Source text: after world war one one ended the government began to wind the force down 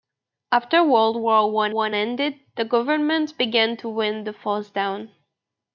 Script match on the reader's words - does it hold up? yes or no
yes